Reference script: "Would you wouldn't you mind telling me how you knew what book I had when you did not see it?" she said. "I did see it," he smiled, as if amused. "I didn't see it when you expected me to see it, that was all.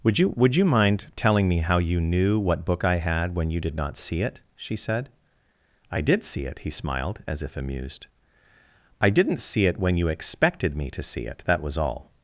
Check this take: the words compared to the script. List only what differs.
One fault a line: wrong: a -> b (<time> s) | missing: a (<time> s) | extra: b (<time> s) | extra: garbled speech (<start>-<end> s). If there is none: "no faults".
wrong: wouldn't -> would (0.3 s)